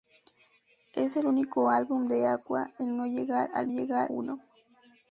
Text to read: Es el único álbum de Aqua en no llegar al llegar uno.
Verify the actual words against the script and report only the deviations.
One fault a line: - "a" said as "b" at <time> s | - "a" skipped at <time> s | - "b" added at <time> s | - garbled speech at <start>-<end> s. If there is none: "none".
none